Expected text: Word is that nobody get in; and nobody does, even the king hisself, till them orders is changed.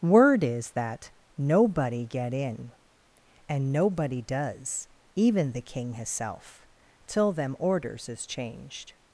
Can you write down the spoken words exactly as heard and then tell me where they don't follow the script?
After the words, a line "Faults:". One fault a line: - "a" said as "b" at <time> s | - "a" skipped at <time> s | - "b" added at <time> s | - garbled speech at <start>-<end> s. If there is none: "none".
Word is that nobody get in; and nobody does, even the king hisself, till them orders is changed.
Faults:
none